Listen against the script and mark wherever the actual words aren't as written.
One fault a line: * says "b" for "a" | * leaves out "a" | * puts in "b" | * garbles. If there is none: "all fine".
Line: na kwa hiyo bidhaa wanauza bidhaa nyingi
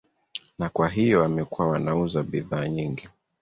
* says "wamekuwa" for "bidhaa"